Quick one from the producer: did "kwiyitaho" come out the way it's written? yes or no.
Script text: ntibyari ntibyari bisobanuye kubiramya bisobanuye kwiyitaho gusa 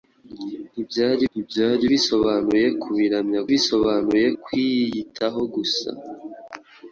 yes